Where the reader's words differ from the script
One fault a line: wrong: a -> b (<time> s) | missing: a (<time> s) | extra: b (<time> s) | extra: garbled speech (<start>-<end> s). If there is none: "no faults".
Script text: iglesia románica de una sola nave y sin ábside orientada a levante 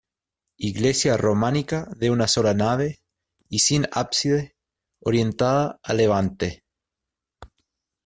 no faults